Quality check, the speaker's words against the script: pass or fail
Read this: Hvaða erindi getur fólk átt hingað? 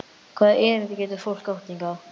pass